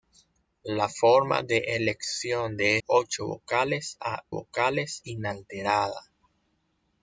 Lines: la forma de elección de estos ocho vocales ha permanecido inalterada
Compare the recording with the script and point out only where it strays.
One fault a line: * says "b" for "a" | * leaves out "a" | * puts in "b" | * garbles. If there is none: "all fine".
* leaves out "estos"
* says "vocales" for "permanecido"